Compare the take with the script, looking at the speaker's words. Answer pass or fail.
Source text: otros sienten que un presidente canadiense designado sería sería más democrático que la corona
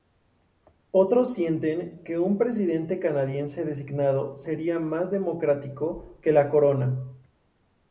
fail